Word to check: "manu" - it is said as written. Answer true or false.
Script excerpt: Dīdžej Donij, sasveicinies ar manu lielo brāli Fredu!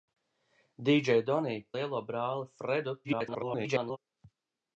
false